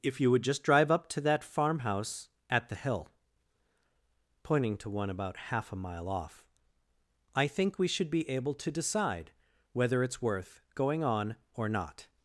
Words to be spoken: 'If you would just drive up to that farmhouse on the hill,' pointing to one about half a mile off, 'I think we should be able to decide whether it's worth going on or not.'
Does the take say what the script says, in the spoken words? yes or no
no